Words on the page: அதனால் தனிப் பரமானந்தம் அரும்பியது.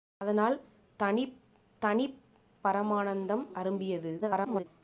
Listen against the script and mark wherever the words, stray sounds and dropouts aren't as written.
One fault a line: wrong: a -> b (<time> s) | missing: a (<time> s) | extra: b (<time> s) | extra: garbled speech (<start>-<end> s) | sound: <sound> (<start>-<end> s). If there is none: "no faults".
extra: தனிப் (1.8 s)
extra: garbled speech (4.2-4.6 s)